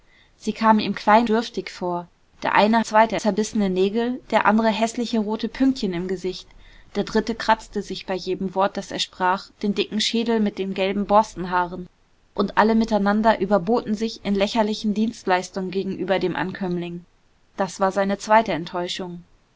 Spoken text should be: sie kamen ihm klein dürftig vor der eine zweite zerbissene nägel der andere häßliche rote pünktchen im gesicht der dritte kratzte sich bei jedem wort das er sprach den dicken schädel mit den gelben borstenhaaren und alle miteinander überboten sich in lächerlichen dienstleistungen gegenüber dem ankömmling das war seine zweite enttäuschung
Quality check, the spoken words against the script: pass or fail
pass